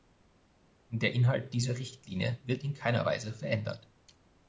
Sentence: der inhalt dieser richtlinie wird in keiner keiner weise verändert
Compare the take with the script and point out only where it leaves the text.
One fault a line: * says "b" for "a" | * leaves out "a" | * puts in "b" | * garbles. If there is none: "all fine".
* leaves out "keiner"